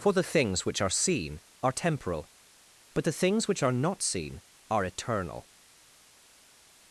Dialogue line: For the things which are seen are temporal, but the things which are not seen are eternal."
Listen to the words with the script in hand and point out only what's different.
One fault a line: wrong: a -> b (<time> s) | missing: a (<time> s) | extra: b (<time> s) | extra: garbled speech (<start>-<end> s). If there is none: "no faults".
no faults